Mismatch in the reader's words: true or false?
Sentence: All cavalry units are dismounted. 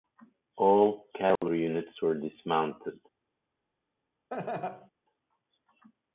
true